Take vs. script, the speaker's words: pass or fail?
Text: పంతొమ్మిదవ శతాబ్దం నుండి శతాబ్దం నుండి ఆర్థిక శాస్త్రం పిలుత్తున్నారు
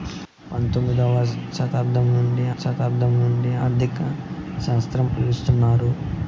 pass